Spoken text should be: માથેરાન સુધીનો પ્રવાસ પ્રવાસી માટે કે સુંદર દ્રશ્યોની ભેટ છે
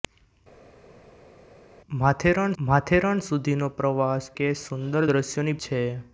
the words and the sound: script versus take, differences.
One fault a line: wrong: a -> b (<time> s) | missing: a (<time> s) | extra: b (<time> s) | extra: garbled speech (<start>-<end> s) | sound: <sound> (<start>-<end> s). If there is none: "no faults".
extra: માથેરાન (2.6 s)
missing: પ્રવાસી માટે (4.3 s)
missing: ભેટ (5.6 s)